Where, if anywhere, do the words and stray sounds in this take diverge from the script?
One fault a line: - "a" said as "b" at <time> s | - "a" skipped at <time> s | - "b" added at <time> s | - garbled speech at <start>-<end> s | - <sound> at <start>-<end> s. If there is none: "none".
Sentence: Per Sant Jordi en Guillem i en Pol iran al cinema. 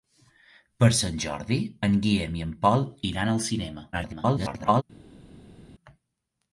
- garbled speech at 3.9-4.8 s